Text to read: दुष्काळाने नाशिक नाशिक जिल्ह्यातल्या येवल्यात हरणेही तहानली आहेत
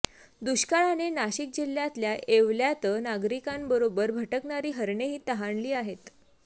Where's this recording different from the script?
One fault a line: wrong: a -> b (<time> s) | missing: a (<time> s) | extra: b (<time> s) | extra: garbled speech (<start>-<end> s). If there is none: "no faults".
missing: नाशिक (1.5 s)
extra: नागरिकांबरोबर भटकणारी (3.0 s)